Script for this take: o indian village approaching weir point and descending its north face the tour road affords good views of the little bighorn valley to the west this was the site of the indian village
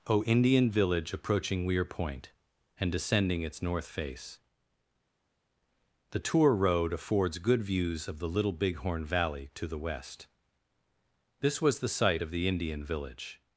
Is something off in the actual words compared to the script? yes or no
no